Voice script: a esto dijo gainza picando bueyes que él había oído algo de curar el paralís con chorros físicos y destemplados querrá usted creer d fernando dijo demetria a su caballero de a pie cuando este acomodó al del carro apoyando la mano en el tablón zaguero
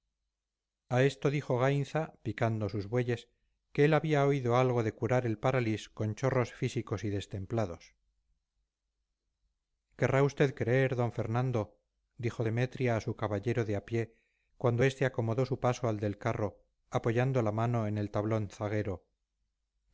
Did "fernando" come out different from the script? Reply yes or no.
no